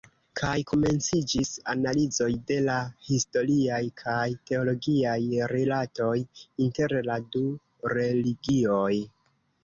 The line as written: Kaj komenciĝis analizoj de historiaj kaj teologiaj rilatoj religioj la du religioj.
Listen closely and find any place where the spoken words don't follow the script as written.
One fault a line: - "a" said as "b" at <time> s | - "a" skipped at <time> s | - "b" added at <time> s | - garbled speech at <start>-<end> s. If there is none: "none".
- "la" added at 2.7 s
- "religioj" said as "inter" at 6.7 s